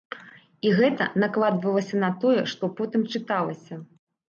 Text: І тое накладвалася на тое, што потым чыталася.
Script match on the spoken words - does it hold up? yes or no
no